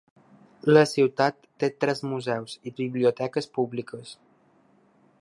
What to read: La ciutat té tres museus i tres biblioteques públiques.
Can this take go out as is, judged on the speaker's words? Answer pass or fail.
fail